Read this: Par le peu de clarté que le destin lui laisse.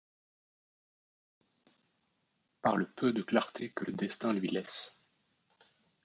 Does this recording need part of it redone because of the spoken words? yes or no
no